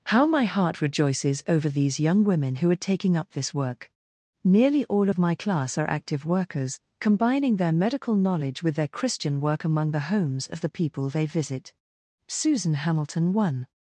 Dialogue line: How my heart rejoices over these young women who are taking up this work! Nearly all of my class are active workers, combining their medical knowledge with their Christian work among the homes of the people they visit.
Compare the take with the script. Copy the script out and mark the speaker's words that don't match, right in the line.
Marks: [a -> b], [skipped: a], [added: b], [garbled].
How my heart rejoices over these young women who are taking up this work! Nearly all of my class are active workers, combining their medical knowledge with their Christian work among the homes of the people they visit. [added: Susan Hamilton one]